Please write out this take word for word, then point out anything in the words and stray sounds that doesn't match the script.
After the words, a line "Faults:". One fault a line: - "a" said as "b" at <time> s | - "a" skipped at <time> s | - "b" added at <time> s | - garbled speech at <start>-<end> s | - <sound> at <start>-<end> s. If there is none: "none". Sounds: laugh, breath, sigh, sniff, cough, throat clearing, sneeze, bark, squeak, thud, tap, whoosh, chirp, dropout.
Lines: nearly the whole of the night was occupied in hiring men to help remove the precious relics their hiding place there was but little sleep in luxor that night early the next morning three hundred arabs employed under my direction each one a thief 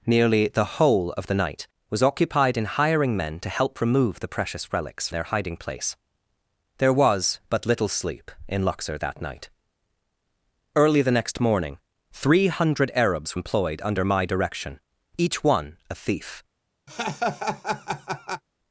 nearly the whole of the night was occupied in hiring men to help remove the precious relics their hiding place there was but little sleep in luxor that night early the next morning three hundred arabs employed under my direction each one a thief
Faults:
- laugh at 16.9-18.4 s